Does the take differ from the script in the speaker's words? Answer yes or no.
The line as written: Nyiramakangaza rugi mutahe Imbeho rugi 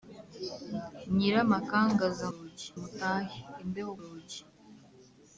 no